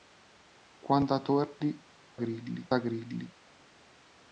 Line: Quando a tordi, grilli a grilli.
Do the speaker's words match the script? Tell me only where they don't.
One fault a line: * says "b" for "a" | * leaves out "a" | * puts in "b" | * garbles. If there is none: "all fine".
all fine